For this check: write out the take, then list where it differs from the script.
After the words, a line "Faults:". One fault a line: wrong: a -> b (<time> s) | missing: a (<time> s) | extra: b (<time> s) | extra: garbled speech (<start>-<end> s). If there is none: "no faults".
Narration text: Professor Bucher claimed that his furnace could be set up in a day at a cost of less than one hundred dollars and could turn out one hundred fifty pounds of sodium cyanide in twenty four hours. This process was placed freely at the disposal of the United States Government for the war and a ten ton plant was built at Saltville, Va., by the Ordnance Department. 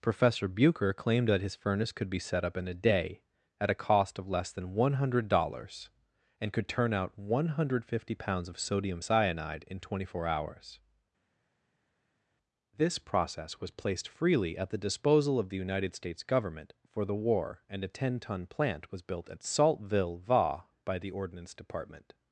Professor Bucher claimed that his furnace could be set up in a day at a cost of less than one hundred dollars and could turn out one hundred fifty pounds of sodium cyanide in twenty four hours. This process was placed freely at the disposal of the United States Government for the war and a ten ton plant was built at Saltville, Va., by the Ordnance Department.
Faults:
no faults